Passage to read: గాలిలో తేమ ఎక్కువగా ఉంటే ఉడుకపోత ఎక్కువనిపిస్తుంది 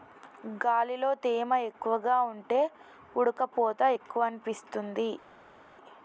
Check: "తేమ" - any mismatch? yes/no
no